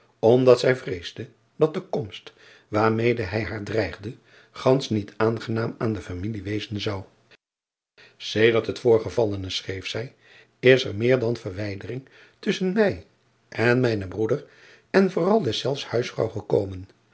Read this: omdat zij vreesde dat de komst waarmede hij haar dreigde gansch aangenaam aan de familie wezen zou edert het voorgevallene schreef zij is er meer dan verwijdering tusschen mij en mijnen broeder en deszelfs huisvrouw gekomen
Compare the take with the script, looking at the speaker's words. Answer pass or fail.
fail